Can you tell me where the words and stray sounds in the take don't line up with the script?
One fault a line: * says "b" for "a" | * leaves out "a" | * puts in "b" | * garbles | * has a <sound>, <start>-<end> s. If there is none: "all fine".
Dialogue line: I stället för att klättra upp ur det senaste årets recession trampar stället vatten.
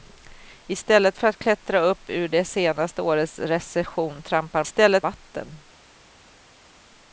all fine